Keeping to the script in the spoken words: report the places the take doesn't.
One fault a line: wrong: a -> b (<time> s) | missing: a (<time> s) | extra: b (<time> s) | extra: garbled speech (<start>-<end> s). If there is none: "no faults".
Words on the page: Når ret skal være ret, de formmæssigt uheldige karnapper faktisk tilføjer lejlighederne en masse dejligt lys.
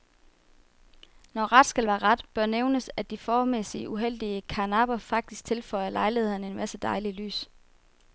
extra: bør nævnes at (2.3 s)